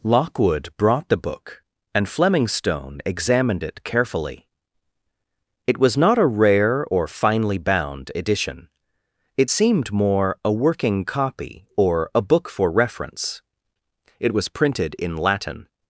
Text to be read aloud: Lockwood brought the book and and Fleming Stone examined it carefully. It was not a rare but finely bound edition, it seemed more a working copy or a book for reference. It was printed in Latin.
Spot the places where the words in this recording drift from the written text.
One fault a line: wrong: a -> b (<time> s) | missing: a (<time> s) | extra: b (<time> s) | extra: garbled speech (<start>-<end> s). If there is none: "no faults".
missing: and (2.1 s)
wrong: but -> or (6.9 s)